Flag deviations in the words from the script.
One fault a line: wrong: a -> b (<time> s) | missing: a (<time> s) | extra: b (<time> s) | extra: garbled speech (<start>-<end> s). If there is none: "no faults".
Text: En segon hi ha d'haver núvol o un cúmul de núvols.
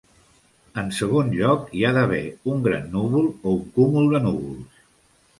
extra: lloc (1.3 s)
extra: un gran (2.5 s)